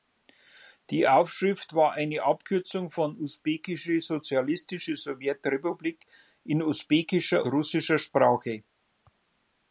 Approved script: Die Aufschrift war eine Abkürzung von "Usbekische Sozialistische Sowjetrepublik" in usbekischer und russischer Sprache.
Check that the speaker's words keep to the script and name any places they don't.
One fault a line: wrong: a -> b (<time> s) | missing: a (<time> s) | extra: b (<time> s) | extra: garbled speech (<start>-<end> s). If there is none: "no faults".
missing: und (7.5 s)